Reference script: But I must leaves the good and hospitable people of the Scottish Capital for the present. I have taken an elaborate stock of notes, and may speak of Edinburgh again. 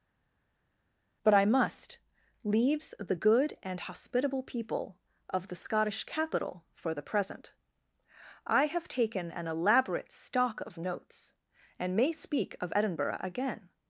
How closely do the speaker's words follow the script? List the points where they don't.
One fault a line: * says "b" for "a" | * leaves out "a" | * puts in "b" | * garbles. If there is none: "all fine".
all fine